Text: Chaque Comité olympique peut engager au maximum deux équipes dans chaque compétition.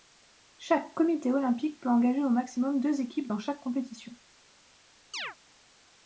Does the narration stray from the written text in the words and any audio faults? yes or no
yes